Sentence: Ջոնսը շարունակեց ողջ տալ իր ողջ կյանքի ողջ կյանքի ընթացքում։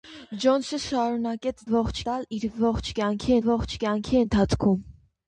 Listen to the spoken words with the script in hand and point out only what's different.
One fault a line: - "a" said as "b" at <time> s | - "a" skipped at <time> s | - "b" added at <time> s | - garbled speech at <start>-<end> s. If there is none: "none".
none